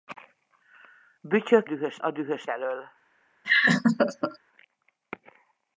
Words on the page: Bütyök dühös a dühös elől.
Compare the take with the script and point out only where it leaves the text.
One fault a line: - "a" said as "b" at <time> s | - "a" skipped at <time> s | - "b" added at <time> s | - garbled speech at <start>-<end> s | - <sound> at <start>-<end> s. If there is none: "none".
- laugh at 3.4-4.4 s